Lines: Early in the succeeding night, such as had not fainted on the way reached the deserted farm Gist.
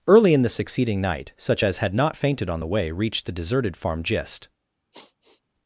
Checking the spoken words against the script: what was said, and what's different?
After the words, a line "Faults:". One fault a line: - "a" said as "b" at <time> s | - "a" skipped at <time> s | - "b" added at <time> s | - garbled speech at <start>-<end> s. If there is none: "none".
Early in the succeeding night, such as had not fainted on the way reached the deserted farm Gist.
Faults:
none